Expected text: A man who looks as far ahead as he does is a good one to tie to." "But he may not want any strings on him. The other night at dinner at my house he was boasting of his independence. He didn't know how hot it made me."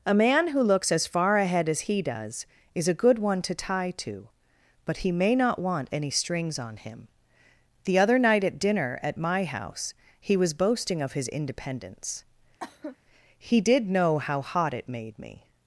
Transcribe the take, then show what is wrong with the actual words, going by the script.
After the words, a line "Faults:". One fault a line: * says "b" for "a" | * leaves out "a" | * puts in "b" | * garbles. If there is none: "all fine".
A man who looks as far ahead as he does is a good one to tie to." "But he may not want any strings on him. The other night at dinner at my house he was boasting of his independence. He did know how hot it made me."
Faults:
* says "did" for "didn't"